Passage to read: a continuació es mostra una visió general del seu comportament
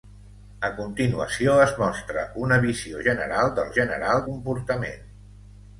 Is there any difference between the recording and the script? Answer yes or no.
yes